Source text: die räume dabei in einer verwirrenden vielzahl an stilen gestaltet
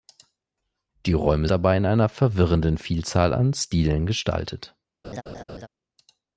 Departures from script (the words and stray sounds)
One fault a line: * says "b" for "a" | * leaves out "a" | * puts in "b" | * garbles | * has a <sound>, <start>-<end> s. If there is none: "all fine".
* has a laugh, 5.0-5.7 s